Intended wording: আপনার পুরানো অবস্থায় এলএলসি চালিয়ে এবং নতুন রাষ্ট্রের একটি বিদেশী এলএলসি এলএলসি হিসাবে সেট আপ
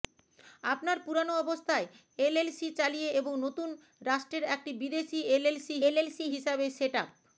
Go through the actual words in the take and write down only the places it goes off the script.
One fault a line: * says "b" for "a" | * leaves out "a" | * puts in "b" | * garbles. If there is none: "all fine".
all fine